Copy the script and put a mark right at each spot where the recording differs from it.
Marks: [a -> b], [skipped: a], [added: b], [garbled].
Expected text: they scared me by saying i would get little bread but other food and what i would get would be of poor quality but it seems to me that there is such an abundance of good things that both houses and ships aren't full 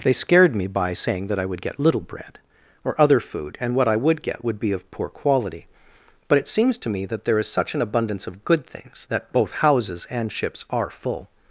they scared me by saying [added: that] i would get little bread [but -> or] other food and what i would get would be of poor quality but it seems to me that there is such an abundance of good things that both houses and ships [aren't -> are] full